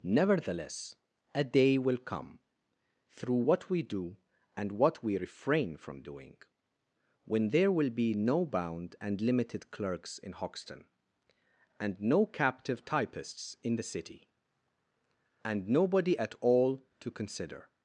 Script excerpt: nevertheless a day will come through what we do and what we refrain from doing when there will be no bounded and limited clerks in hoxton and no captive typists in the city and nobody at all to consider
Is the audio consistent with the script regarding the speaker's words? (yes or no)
no